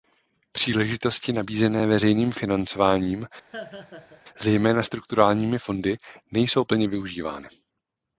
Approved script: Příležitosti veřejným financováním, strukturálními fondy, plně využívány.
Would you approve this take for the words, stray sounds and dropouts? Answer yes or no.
no